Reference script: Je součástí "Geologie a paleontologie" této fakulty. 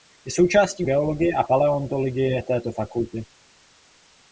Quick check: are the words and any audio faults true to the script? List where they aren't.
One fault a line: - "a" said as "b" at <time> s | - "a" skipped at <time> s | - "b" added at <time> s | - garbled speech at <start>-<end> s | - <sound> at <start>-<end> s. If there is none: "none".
none